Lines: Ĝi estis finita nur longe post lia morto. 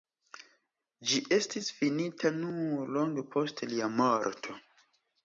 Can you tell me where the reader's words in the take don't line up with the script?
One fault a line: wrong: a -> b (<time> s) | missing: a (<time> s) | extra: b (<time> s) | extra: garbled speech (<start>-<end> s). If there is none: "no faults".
no faults